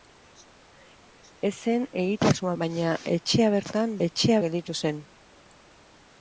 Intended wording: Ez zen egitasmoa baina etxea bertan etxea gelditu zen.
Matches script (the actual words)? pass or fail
pass